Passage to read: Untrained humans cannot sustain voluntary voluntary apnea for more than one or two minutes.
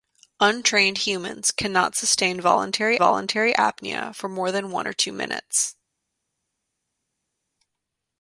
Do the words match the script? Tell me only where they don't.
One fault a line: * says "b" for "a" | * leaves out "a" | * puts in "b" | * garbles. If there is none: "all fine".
all fine